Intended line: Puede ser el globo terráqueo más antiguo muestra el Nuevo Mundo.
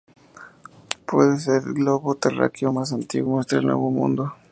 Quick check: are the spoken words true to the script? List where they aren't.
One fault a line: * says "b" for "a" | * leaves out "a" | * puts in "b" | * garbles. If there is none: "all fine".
all fine